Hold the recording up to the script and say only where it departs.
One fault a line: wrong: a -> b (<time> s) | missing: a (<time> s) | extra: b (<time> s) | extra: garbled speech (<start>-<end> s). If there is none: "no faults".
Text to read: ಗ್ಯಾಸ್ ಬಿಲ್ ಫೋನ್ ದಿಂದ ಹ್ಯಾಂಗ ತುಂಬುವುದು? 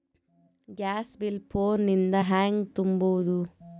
no faults